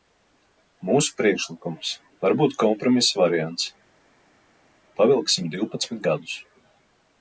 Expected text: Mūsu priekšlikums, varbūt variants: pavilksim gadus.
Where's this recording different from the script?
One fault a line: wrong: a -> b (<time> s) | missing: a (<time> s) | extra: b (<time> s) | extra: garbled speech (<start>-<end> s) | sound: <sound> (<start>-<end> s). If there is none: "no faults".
extra: kompromisa (2.6 s)
extra: divpadsmit (5.5 s)